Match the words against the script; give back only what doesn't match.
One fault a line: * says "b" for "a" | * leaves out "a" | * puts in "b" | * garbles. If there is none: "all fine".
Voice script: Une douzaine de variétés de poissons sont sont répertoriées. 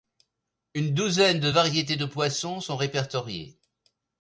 * leaves out "sont"